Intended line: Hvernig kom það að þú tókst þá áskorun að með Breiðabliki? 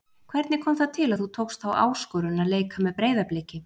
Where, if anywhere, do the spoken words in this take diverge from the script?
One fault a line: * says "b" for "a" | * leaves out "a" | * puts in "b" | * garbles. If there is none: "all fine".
* puts in "til"
* puts in "leika"